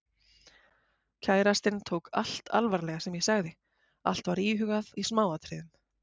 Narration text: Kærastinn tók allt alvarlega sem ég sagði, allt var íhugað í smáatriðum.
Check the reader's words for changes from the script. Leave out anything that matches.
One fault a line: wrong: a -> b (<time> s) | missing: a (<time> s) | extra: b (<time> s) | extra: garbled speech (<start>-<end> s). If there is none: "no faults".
no faults